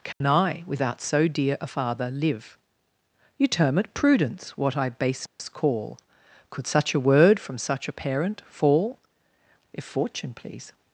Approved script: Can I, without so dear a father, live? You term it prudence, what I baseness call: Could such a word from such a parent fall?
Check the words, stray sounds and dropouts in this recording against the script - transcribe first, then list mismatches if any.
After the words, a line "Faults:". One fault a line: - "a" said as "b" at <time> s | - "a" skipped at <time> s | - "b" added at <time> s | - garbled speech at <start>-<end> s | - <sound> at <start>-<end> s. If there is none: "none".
Can I, without so dear a father, live? You term it prudence, what I baseness call: Could such a word from such a parent fall? If Fortune please
Faults:
- dropout at 0.1-0.2 s
- dropout at 5.3-5.4 s
- "If Fortune please" added at 9.7 s